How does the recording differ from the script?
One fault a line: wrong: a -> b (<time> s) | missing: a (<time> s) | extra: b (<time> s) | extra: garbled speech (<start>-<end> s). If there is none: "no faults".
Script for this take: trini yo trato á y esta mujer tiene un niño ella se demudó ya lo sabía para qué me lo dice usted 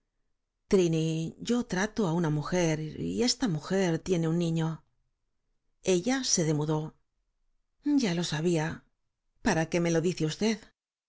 extra: una mujer (2.2 s)